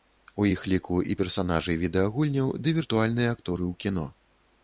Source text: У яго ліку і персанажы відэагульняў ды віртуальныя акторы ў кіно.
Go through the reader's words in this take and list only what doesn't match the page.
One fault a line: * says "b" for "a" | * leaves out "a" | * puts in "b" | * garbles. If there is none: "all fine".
* says "іх" for "яго"